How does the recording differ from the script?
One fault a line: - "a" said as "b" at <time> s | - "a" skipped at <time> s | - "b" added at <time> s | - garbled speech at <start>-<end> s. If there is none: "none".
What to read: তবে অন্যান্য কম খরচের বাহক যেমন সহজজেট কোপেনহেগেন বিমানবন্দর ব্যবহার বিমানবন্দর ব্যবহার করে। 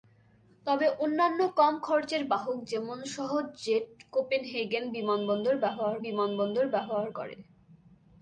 none